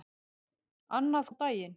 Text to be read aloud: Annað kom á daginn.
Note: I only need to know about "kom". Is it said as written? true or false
false